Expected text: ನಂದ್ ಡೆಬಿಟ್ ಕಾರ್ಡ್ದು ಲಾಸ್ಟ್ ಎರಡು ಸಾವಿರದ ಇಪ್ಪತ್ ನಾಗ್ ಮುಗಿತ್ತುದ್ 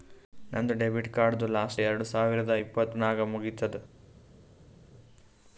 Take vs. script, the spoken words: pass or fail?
pass